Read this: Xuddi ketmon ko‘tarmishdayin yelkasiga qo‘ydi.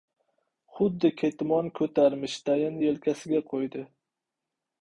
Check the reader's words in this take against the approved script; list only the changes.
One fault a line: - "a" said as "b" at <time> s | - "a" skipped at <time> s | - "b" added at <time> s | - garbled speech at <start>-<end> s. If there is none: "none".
none